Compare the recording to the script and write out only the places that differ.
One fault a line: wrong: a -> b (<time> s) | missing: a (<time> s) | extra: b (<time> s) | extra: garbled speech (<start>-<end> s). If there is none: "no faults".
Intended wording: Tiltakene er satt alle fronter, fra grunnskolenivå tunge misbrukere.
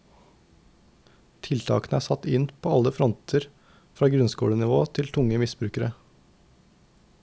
extra: inn på (2.4 s)
extra: til (5.0 s)